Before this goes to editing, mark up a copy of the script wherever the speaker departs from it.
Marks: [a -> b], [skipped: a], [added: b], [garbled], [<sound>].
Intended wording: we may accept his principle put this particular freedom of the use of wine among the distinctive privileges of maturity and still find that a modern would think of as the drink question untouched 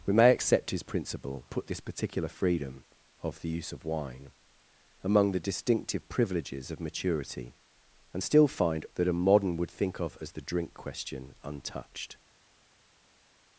we may accept his principle put this particular freedom of the use of wine among the distinctive privileges of maturity and still find that a modern would think of as the drink question untouched